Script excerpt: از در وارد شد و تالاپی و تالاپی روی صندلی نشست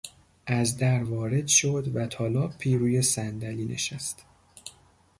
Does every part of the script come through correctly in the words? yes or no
no